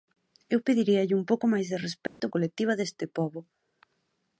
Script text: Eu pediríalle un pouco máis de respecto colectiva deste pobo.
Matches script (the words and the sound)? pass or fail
fail